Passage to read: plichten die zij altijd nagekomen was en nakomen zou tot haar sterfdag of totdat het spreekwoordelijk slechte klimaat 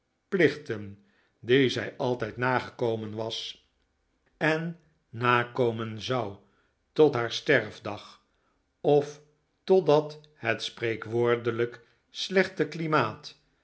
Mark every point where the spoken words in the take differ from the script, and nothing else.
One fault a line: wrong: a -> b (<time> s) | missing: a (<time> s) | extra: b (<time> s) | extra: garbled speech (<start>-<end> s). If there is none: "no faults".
no faults